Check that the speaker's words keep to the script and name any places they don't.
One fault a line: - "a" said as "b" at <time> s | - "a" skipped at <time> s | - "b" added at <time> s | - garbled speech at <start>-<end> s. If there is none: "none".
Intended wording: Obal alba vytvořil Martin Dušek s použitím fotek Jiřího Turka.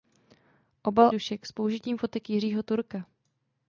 - "alba vytvořil Martin" skipped at 1.1 s